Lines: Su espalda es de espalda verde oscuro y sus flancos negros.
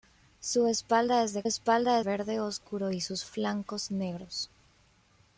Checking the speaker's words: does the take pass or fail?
pass